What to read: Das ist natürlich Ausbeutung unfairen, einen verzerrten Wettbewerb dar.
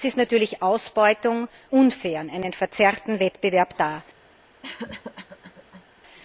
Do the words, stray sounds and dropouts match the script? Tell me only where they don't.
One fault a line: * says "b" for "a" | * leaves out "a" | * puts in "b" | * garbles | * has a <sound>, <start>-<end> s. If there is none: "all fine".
* has a cough, 4.6-5.8 s